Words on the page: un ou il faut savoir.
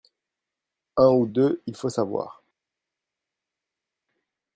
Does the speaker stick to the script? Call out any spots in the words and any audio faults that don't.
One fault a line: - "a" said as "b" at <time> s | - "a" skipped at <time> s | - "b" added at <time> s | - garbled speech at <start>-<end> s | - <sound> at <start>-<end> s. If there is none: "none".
- "deux" added at 1.3 s